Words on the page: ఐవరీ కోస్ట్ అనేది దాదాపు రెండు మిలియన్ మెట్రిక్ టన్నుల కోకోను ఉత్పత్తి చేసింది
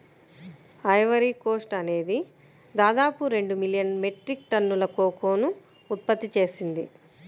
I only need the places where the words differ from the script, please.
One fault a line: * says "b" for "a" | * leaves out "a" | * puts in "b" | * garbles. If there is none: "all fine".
all fine